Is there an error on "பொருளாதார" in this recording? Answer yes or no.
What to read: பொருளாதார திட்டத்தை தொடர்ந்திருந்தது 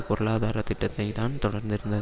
no